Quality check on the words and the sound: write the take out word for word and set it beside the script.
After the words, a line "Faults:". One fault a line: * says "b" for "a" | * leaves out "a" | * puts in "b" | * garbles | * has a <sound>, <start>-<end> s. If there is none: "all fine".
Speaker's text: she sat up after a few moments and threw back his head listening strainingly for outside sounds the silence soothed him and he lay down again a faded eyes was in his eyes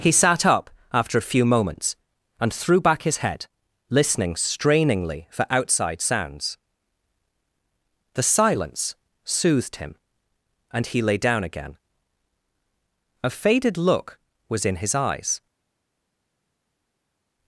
he sat up after a few moments and threw back his head listening strainingly for outside sounds the silence soothed him and he lay down again a faded look was in his eyes
Faults:
* says "he" for "she"
* says "look" for "eyes"